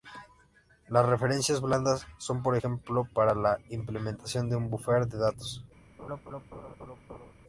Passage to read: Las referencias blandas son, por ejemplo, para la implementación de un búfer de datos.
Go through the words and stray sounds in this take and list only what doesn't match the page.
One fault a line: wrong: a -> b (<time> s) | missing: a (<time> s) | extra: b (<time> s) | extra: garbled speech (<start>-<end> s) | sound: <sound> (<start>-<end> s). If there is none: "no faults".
sound: laugh (6.0-7.3 s)